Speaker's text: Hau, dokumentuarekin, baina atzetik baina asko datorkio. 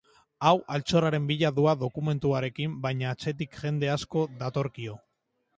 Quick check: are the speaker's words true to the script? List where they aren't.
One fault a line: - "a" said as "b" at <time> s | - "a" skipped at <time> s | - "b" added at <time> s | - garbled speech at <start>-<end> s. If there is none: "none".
- "altxorraren bila doa" added at 0.8 s
- "baina" said as "jende" at 3.6 s